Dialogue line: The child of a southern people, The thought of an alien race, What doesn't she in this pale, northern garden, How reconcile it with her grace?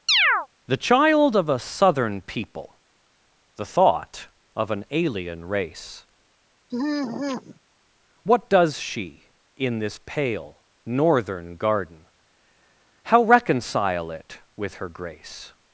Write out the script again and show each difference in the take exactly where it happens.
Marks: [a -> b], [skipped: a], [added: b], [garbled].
The child of a southern people, The thought of an alien race, What [doesn't -> does] she in this pale, northern garden, How reconcile it with her grace?